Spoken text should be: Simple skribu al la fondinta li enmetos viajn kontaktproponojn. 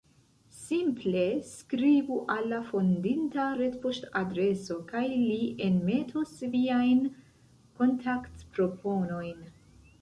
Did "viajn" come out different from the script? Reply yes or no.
no